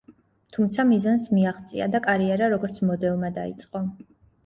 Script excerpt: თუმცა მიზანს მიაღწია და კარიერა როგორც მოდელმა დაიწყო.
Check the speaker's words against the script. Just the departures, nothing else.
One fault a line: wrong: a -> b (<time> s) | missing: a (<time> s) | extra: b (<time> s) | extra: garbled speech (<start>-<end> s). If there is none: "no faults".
no faults